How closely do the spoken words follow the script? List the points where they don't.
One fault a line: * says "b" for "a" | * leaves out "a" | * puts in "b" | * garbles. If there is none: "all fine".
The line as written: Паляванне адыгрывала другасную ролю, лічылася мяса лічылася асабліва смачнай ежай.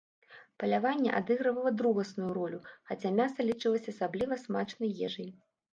* says "хаця" for "лічылася"